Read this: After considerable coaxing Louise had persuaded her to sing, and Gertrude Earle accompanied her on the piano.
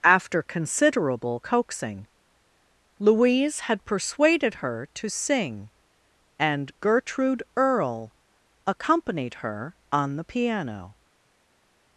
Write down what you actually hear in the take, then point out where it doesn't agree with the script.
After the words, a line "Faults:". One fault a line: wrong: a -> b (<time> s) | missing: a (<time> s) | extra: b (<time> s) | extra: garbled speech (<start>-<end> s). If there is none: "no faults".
After considerable coaxing Louise had persuaded her to sing, and Gertrude Earle accompanied her on the piano.
Faults:
no faults